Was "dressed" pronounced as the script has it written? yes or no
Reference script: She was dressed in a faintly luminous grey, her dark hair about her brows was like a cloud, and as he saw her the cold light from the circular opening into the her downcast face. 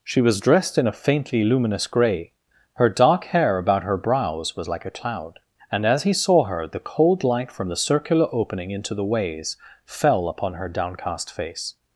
yes